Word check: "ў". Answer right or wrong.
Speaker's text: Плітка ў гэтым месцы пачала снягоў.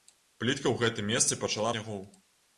right